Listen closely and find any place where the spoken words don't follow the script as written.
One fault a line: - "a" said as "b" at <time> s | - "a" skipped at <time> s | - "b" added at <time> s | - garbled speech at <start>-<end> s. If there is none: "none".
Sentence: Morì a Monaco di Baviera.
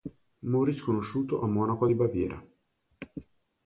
- "sconosciuto" added at 0.8 s